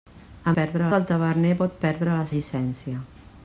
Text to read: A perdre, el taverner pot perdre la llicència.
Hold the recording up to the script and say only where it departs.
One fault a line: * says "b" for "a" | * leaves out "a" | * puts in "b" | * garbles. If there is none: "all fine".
all fine